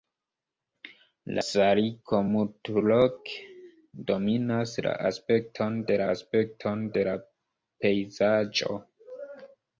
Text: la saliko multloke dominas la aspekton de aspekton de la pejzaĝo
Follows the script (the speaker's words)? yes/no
yes